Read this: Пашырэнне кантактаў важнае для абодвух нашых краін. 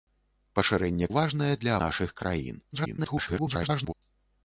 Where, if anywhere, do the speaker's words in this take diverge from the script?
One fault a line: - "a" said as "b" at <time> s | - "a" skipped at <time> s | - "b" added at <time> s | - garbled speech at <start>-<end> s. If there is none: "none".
- "кантактаў" skipped at 1.1 s
- "абодвух" skipped at 1.7 s
- garbled speech at 2.7-3.9 s